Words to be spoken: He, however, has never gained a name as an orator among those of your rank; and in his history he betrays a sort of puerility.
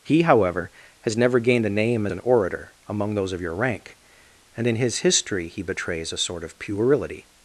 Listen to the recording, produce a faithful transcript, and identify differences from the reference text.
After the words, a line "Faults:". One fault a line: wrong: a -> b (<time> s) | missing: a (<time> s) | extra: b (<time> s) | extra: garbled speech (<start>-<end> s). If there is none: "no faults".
He, however, has never gained a name an orator among those of your rank; and in his history he betrays a sort of puerility.
Faults:
missing: as (2.1 s)